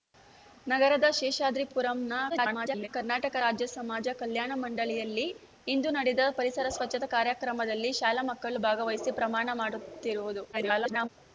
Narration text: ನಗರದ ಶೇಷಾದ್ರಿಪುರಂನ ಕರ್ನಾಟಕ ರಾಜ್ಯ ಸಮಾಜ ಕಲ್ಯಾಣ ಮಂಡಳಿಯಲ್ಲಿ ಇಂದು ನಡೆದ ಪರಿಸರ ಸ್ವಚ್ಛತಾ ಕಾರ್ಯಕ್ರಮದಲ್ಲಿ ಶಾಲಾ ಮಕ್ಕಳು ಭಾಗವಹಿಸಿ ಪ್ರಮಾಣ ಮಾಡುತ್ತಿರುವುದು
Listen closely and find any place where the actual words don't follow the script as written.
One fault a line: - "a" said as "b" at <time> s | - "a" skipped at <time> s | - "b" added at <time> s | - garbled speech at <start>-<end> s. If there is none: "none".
- garbled speech at 2.3-2.9 s
- garbled speech at 10.5-11.1 s